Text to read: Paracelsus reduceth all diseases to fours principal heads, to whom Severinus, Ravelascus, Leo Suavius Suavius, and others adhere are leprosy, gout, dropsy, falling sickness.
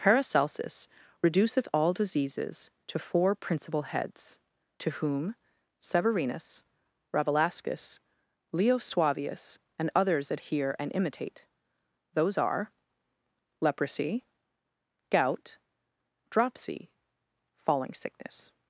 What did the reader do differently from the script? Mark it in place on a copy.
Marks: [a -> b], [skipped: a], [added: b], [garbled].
Paracelsus reduceth all diseases to [fours -> four] principal heads, to whom Severinus, Ravelascus, Leo Suavius [skipped: Suavius,] and others adhere [added: and imitate those] are leprosy, gout, dropsy, falling sickness.